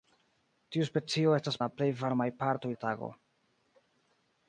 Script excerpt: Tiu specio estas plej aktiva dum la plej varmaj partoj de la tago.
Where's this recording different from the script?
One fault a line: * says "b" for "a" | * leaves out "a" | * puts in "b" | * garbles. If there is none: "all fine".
* leaves out "plej aktiva dum"
* leaves out "de"